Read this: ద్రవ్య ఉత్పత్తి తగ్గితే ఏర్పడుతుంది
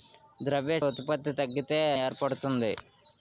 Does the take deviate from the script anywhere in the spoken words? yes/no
no